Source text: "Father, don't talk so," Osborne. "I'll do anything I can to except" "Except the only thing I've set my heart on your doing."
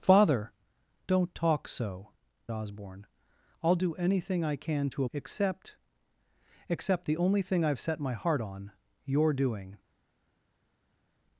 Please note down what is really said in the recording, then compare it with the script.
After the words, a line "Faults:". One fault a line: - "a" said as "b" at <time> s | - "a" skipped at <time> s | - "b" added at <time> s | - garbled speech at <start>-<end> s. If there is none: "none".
"Father, don't talk so," Osborne. "I'll do anything I can to except" "Except the only thing I've set my heart on your doing."
Faults:
none